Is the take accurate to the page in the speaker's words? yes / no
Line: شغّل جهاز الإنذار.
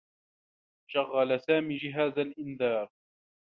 no